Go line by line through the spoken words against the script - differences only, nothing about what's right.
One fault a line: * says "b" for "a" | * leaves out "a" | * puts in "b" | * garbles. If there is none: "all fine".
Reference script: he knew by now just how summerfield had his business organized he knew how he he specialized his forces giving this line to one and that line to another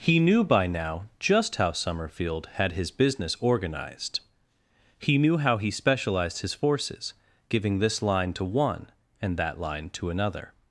* leaves out "he"